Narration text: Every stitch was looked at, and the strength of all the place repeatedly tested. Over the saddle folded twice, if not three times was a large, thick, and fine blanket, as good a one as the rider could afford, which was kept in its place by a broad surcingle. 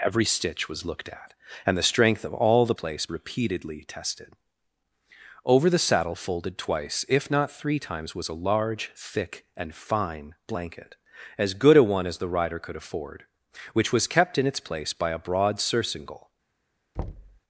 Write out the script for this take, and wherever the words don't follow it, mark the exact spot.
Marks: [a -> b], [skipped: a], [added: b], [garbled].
Every stitch was looked at, and the strength of all the place repeatedly tested. Over the saddle folded twice, if not three times was a large, thick, and fine blanket, as good a one as the rider could afford, which was kept in its place by a broad surcingle.